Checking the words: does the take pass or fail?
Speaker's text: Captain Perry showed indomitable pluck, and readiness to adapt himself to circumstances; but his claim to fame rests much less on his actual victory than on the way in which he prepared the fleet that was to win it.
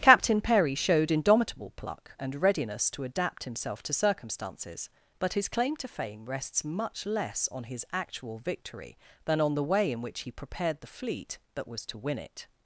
pass